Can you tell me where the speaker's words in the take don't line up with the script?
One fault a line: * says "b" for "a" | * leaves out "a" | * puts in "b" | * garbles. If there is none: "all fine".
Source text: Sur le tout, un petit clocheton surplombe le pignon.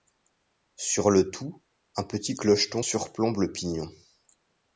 all fine